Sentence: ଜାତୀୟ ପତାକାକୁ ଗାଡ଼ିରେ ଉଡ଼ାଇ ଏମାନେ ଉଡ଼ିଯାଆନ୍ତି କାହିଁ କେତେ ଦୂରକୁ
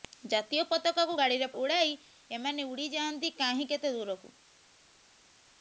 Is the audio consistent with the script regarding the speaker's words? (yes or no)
yes